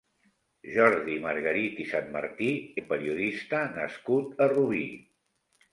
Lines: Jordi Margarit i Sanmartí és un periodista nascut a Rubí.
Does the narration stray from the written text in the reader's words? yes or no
yes